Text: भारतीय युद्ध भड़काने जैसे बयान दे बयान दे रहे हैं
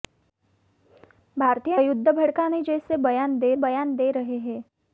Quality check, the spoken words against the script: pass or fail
pass